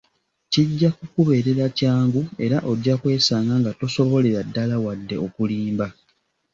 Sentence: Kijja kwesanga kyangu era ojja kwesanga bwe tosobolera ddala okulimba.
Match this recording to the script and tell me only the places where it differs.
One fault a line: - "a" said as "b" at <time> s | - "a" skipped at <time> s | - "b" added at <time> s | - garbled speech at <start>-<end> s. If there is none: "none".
- "kwesanga" said as "kukubeerera" at 1.0 s
- "bwe" said as "nga" at 3.6 s
- "wadde" added at 4.8 s